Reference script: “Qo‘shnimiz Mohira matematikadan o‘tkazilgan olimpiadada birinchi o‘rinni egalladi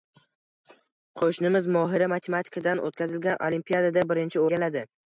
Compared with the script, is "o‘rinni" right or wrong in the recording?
wrong